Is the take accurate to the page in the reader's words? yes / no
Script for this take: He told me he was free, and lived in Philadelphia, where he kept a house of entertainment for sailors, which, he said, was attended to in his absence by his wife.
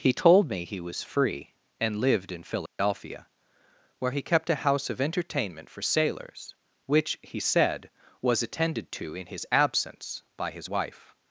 yes